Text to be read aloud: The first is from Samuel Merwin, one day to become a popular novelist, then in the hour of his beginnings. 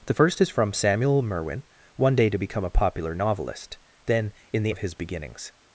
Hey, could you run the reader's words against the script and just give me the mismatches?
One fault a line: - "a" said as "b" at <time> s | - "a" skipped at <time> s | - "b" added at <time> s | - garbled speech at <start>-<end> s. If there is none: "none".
- "hour" skipped at 4.8 s